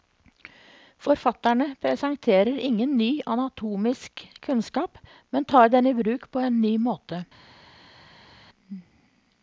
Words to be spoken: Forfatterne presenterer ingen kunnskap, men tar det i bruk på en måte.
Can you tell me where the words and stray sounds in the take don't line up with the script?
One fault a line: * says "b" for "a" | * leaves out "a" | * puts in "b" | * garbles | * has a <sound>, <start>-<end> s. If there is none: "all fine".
* puts in "ny anatomisk"
* says "den" for "det"
* puts in "ny"